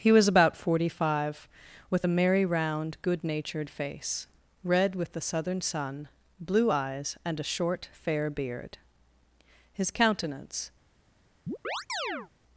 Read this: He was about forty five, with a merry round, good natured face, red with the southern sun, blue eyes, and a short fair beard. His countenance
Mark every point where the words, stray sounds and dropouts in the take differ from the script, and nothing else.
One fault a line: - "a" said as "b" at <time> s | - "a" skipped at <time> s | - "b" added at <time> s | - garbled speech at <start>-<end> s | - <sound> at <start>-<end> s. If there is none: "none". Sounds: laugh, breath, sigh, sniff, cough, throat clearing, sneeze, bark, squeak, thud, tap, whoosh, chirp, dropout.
- chirp at 11.5-12.3 s